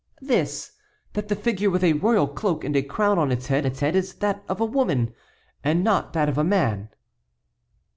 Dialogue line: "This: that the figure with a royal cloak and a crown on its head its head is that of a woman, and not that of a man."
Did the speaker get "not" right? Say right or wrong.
right